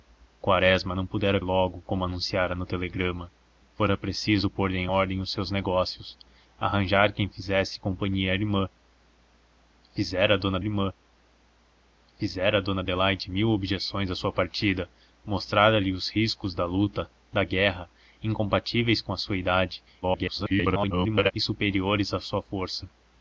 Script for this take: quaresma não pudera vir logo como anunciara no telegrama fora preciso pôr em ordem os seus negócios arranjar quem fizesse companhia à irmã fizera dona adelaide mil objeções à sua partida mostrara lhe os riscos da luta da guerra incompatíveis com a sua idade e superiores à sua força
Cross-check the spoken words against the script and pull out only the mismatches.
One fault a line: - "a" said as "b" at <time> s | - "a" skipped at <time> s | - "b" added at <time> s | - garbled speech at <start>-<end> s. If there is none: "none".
- "vir" skipped at 1.4 s
- "irmã fizera dona" added at 10.6 s
- garbled speech at 20.0-21.3 s